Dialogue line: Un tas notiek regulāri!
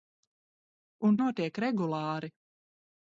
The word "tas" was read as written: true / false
false